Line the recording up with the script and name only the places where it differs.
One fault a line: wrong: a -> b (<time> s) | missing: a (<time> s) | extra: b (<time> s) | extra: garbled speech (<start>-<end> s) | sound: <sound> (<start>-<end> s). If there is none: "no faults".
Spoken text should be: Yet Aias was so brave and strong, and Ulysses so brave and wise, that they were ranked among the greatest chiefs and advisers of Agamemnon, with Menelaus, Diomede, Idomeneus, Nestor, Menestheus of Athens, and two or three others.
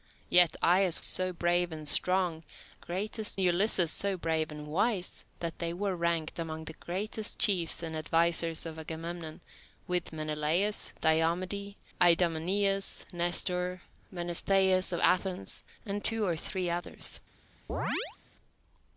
missing: was (1.0 s)
wrong: and -> greatest (2.7 s)
sound: chirp (17.7-18.2 s)